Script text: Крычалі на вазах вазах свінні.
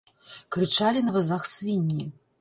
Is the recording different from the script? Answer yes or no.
yes